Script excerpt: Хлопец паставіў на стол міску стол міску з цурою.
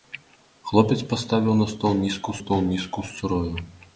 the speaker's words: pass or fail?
pass